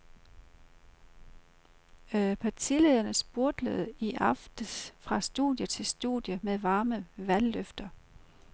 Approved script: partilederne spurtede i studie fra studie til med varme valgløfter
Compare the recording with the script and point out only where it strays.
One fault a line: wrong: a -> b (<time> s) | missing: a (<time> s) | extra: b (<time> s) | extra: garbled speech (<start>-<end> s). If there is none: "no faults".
wrong: studie -> aftes (4.1 s)
extra: studie (5.8 s)